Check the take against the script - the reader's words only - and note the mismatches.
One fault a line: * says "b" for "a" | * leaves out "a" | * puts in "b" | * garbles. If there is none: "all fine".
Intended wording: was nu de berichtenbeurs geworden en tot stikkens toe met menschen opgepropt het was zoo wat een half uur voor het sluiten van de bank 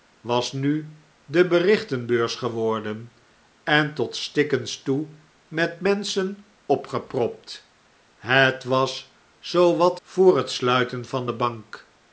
* leaves out "een half uur"